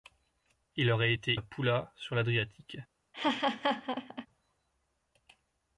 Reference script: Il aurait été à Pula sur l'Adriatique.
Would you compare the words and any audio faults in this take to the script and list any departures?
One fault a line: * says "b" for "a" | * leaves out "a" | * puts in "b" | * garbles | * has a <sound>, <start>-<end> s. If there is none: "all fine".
* has a laugh, 3.1-4.3 s